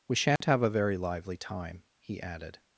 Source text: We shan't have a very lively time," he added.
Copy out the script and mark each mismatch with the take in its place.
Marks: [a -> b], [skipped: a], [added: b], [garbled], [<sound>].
We shan't [dropout] have a very lively time," he added.